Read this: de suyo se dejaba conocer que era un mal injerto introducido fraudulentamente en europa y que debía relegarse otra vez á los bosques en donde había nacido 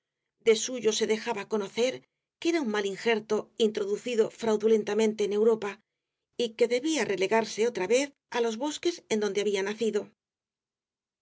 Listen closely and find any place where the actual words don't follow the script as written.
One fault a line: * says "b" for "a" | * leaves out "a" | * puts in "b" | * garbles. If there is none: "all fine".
all fine